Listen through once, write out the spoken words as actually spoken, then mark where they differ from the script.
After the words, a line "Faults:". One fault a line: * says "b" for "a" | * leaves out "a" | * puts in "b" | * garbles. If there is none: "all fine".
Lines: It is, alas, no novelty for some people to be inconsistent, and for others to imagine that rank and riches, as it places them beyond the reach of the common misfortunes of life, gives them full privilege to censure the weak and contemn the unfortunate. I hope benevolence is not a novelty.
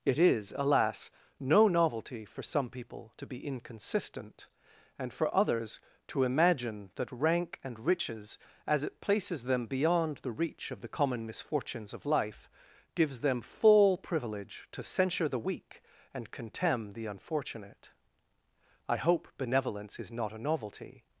It is, alas, no novelty for some people to be inconsistent, and for others to imagine that rank and riches, as it places them beyond the reach of the common misfortunes of life, gives them full privilege to censure the weak and contemn the unfortunate. I hope benevolence is not a novelty.
Faults:
all fine